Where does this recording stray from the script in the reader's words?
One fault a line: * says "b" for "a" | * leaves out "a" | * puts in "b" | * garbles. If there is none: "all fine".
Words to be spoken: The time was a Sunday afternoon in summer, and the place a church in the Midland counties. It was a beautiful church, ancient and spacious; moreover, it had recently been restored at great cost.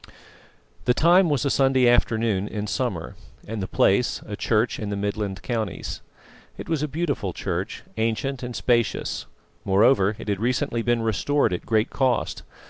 all fine